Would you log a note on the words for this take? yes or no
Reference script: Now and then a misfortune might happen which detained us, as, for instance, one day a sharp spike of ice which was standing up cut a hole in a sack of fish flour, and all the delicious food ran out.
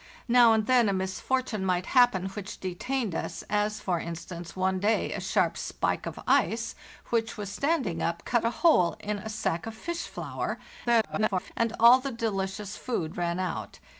yes